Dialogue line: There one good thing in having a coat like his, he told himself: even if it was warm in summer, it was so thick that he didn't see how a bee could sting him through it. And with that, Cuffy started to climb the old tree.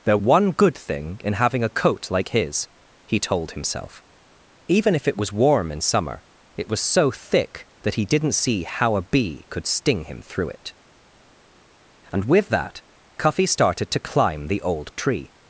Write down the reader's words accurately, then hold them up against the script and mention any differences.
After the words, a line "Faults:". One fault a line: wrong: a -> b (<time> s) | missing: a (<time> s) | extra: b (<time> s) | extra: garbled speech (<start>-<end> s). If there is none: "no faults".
There one good thing in having a coat like his, he told himself: even if it was warm in summer, it was so thick that he didn't see how a bee could sting him through it. And with that, Cuffy started to climb the old tree.
Faults:
no faults